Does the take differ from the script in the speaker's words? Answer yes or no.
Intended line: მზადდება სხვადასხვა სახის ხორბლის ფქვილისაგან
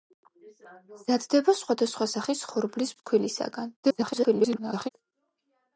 yes